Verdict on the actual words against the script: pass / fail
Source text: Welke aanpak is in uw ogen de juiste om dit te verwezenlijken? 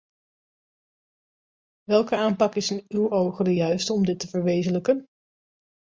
pass